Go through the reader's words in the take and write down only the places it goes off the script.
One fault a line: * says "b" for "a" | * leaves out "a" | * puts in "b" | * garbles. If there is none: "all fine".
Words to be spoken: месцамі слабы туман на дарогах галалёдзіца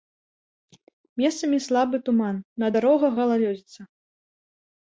all fine